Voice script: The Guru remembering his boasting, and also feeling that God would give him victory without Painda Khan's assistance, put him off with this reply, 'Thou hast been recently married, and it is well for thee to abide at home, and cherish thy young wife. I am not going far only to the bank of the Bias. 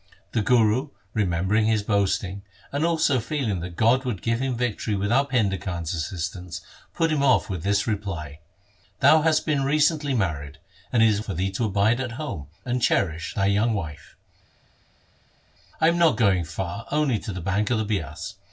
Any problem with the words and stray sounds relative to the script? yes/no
yes